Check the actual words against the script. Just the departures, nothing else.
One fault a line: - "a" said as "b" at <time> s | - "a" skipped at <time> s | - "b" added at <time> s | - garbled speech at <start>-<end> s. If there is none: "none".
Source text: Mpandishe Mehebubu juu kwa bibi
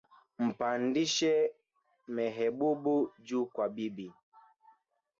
none